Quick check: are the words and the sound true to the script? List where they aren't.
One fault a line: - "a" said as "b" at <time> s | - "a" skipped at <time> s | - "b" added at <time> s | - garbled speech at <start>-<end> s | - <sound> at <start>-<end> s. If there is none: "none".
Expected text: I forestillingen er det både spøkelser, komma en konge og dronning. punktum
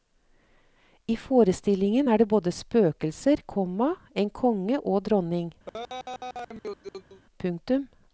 - laugh at 5.7-7.2 s